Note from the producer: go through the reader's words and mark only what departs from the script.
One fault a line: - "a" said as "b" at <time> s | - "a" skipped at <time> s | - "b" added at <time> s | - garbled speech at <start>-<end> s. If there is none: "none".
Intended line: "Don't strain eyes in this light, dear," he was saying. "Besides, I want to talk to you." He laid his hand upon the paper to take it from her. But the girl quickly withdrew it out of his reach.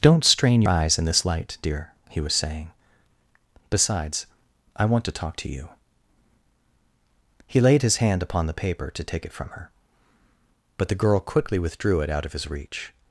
none